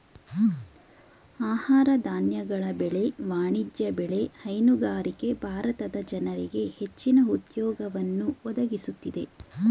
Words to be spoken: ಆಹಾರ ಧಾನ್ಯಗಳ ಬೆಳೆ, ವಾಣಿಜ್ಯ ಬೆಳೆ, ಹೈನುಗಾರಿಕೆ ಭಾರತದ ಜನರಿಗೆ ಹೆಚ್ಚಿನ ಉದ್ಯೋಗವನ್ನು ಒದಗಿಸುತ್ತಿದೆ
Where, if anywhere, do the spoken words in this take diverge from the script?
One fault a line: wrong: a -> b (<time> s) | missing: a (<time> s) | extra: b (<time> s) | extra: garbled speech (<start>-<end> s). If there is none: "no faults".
no faults